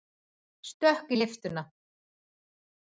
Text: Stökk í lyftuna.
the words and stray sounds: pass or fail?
pass